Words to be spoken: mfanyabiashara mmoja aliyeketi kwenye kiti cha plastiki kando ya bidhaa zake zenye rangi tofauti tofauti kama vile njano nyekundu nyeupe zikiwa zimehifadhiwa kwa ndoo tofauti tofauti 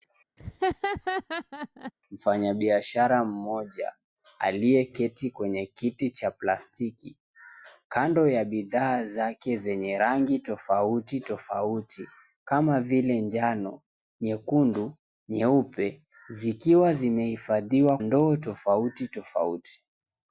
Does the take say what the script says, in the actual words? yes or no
no